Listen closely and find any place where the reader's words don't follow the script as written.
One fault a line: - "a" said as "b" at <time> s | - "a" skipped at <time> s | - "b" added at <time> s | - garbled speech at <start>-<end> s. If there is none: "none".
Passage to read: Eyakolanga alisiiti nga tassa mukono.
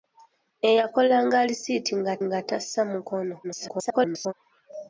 - "nga" added at 2.2 s
- garbled speech at 3.4-4.3 s